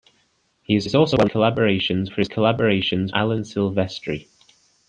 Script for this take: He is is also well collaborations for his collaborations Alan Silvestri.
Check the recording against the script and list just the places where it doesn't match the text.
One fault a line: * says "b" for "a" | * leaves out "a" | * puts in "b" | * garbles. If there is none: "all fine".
all fine